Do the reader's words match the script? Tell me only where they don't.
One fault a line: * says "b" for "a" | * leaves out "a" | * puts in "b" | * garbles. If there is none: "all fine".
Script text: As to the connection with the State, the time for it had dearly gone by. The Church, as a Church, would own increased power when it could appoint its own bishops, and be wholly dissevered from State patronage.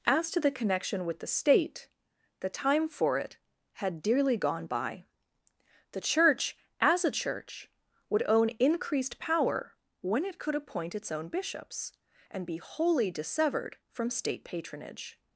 all fine